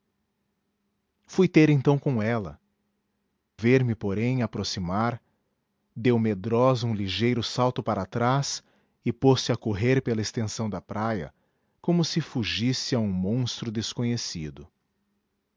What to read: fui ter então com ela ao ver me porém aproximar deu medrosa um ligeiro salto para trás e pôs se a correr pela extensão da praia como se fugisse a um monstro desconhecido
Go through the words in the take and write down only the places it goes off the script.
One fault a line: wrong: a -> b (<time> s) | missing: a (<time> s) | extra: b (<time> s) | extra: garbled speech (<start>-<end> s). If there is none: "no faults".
missing: ao (2.6 s)